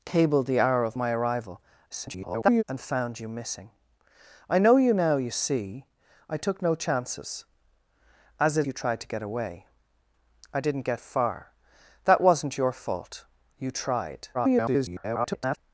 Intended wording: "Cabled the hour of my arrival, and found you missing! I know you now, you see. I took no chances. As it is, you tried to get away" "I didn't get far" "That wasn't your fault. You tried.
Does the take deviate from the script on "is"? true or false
true